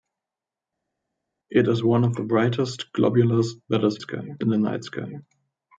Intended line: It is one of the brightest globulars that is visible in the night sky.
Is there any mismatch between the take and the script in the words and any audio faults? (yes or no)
yes